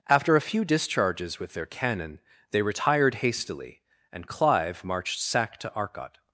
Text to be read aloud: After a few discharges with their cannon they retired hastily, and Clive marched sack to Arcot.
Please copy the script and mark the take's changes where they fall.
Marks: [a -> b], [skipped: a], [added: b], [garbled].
After a few discharges with their cannon they retired hastily, and Clive marched sack to Arcot.